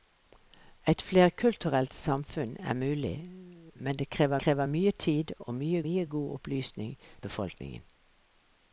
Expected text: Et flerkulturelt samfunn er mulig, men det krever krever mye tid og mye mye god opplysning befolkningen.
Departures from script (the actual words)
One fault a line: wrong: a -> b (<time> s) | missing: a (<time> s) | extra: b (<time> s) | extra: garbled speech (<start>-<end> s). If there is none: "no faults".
no faults